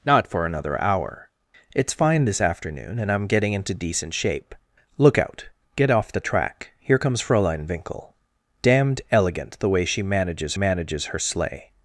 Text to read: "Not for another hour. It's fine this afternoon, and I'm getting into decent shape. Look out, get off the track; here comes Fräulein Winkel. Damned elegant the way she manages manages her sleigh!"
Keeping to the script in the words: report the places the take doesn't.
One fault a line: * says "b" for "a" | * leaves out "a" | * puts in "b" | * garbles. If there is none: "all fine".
all fine